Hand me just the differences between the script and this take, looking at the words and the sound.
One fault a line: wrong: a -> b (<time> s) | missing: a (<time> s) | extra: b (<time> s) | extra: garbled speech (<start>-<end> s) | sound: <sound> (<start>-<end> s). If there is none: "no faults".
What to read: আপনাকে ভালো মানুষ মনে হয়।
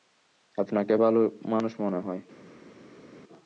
no faults